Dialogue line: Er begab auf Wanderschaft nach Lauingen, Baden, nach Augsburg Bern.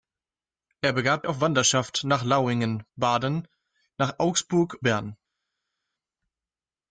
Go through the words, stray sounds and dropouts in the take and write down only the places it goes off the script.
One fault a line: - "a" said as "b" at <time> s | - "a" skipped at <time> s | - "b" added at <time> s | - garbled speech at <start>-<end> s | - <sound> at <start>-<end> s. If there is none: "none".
none